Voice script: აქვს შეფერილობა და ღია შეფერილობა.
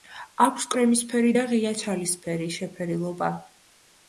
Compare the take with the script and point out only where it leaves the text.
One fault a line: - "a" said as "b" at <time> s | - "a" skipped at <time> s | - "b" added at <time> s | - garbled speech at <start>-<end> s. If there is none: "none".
- "შეფერილობა" said as "კრემისფერი" at 0.7 s
- "ჩალისფერი" added at 1.8 s